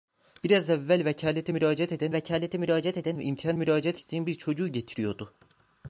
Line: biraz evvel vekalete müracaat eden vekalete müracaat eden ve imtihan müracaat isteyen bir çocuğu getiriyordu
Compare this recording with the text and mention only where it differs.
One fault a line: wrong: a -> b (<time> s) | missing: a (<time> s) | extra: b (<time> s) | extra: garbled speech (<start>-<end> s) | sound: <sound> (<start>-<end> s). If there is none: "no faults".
no faults